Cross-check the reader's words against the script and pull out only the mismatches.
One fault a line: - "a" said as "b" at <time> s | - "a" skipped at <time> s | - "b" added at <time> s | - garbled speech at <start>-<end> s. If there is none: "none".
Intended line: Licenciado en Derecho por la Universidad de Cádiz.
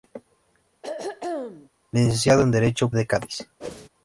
- "por la Universidad" skipped at 2.9 s